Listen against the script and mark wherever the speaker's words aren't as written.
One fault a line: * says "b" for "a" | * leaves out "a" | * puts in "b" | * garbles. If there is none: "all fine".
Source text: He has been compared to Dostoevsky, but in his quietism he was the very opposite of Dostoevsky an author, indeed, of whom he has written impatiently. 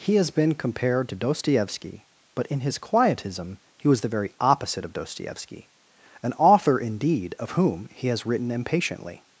all fine